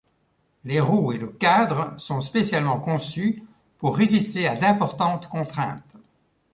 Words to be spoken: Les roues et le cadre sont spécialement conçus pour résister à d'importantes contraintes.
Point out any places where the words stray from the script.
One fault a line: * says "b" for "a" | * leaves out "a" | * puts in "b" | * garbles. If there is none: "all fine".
all fine